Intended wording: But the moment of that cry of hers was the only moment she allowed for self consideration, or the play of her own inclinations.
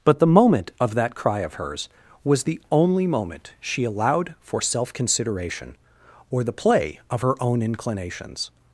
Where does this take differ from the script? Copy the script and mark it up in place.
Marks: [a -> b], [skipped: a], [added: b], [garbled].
But the moment of that cry of hers was the only moment she allowed for self consideration, or the play of her own inclinations.